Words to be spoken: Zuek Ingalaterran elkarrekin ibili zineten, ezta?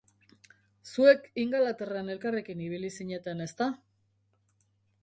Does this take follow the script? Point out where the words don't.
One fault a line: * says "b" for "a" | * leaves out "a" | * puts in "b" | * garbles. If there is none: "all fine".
all fine